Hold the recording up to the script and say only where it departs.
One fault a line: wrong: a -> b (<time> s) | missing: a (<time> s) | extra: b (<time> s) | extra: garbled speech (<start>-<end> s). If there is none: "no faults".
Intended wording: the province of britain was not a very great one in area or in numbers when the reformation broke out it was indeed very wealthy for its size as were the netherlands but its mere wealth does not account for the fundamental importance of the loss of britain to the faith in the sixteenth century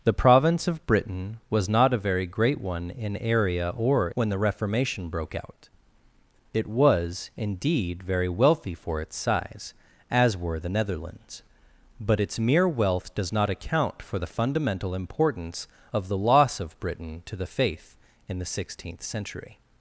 missing: in numbers (4.1 s)